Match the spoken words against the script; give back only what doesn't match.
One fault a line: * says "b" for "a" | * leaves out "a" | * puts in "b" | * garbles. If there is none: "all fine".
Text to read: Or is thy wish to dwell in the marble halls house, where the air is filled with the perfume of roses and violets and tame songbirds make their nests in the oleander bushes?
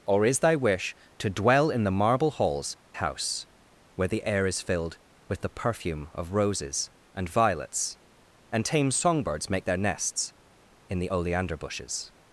all fine